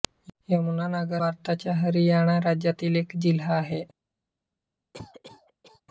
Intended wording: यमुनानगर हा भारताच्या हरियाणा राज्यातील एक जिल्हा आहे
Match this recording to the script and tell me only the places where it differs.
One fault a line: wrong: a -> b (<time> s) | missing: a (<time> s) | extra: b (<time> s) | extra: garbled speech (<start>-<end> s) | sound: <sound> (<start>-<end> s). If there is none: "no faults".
missing: हा (1.2 s)
sound: cough (4.9-5.8 s)